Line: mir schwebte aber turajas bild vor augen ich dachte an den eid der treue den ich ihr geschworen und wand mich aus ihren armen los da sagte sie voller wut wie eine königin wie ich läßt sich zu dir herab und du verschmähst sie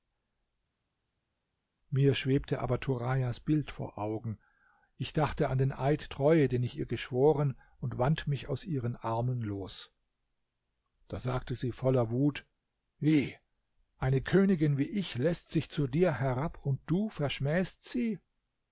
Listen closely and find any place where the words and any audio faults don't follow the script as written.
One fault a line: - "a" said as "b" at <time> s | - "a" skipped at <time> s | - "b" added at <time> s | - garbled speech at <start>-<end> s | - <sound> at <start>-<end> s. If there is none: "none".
- "der" skipped at 6.1 s